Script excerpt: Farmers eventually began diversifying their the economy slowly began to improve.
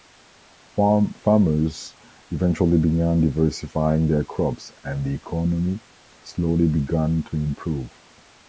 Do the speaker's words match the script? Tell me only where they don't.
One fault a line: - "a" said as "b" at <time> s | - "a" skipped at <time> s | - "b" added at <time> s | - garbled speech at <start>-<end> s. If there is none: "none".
- "crops and" added at 4.2 s